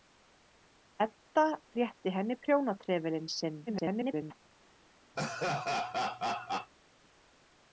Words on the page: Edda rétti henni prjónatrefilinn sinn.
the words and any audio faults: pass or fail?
fail